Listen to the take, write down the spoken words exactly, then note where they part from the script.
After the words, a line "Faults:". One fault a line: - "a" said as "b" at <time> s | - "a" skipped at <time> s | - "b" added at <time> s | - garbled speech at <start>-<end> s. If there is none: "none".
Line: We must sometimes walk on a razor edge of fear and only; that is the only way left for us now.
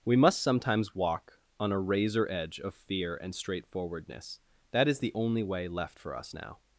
We must sometimes walk on a razor edge of fear and straightforwardness; that is the only way left for us now.
Faults:
- "only" said as "straightforwardness" at 3.4 s